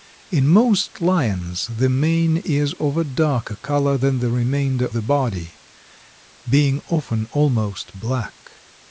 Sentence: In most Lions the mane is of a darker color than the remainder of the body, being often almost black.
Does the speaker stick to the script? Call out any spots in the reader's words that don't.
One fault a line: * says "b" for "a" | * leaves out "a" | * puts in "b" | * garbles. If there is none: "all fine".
* leaves out "of"